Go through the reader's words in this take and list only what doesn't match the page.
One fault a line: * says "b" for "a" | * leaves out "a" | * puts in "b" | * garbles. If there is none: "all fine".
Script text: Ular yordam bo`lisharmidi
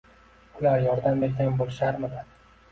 * puts in "bergan"